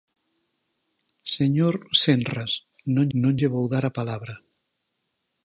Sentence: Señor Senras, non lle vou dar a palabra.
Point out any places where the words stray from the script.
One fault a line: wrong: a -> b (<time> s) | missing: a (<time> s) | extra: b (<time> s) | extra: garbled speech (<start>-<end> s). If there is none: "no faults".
extra: non (3.2 s)